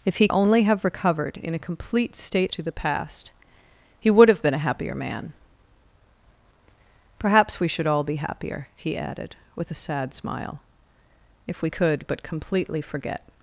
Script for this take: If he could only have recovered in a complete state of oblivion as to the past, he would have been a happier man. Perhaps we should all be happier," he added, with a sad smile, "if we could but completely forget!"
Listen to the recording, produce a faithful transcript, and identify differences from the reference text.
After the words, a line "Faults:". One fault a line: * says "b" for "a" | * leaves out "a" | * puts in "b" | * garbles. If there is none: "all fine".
If he only have recovered in a complete state to the past, he would have been a happier man. Perhaps we should all be happier," he added, with a sad smile, "if we could but completely forget!"
Faults:
* leaves out "could"
* leaves out "of oblivion as"